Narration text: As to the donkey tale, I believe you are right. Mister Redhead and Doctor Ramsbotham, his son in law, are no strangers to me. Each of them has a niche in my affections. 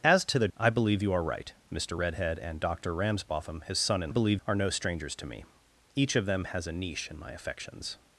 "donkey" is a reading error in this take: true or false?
true